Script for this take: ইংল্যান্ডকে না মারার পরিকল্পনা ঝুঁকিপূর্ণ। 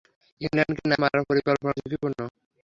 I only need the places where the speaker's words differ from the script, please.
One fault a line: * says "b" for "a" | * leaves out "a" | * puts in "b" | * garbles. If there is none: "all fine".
all fine